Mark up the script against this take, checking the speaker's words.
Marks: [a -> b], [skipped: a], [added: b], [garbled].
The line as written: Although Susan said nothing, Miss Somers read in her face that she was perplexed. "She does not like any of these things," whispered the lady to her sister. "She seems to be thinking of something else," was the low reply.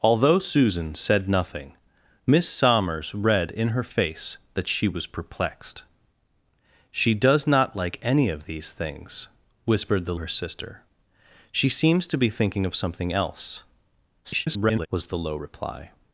Although Susan said nothing, Miss Somers read in her face that she was perplexed. "She does not like any of these things," whispered the [skipped: lady to] her sister. "She seems to be thinking of something else," [garbled] was the low reply.